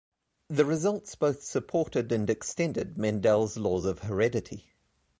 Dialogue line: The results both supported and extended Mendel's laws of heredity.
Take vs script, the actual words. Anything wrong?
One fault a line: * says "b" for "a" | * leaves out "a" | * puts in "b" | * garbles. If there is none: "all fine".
all fine